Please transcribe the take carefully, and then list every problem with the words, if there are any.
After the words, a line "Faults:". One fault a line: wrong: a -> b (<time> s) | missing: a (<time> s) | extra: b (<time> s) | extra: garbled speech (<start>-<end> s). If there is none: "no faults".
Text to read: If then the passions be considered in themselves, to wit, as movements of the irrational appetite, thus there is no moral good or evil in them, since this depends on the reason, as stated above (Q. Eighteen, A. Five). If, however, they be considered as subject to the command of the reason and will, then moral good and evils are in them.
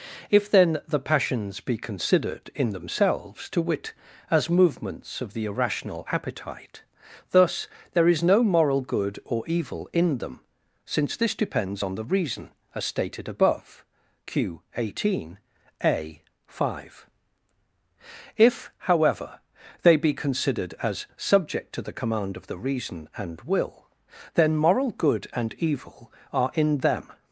If then the passions be considered in themselves, to wit, as movements of the irrational appetite, thus there is no moral good or evil in them, since this depends on the reason, as stated above (Q. Eighteen, A. Five). If, however, they be considered as subject to the command of the reason and will, then moral good and evil are in them.
Faults:
wrong: evils -> evil (25.5 s)